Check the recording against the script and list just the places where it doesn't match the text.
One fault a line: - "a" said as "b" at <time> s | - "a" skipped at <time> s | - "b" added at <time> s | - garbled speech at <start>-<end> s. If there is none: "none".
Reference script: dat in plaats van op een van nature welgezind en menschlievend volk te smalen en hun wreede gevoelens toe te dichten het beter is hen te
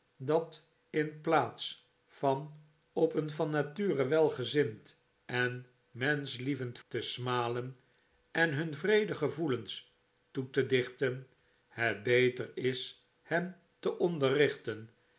- "volk" skipped at 6.8 s